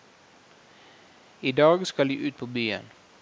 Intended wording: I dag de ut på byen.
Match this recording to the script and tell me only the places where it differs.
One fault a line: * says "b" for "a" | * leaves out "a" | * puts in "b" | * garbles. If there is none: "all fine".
* puts in "skal"